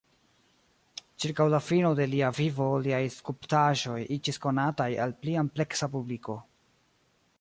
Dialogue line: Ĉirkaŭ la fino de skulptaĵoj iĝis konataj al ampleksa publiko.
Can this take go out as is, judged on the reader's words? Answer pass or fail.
fail